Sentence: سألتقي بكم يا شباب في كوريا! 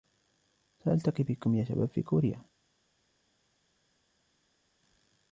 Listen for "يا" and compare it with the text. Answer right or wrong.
right